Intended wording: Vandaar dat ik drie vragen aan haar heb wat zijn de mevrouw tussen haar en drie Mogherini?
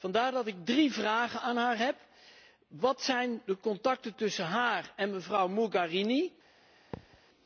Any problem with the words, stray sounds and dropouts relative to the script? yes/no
yes